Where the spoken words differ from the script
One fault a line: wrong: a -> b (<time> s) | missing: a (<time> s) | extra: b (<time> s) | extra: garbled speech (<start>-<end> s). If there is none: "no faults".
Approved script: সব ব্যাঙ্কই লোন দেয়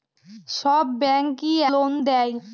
no faults